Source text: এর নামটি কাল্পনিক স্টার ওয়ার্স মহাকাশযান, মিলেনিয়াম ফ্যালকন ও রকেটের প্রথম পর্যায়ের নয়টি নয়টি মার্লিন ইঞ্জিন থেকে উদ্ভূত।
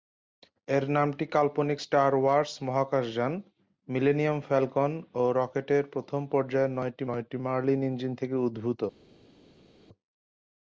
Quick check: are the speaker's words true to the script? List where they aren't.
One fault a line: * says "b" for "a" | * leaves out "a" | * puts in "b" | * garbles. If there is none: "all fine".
all fine